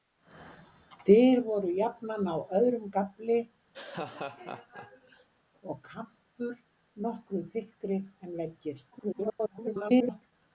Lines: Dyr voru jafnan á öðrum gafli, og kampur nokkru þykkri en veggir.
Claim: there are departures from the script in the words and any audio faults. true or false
true